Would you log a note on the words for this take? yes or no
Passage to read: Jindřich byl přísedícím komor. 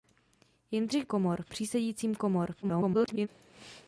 yes